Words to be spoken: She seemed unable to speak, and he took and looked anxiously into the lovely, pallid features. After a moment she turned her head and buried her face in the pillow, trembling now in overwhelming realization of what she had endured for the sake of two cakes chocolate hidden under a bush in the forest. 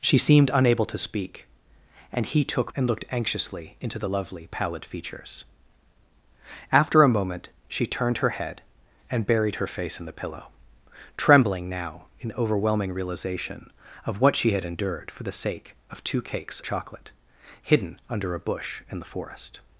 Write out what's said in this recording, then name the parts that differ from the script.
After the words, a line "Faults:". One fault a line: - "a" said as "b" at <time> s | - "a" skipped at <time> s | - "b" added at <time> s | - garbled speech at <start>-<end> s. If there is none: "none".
She seemed unable to speak, and he took and looked anxiously into the lovely, pallid features. After a moment she turned her head and buried her face in the pillow, trembling now in overwhelming realization of what she had endured for the sake of two cakes chocolate hidden under a bush in the forest.
Faults:
none